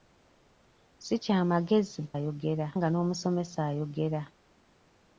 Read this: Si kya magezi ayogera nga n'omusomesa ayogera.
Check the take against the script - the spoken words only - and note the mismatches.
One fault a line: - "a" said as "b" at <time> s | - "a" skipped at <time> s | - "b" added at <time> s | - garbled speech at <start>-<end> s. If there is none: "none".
none